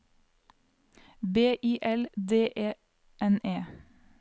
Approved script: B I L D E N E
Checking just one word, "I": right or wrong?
right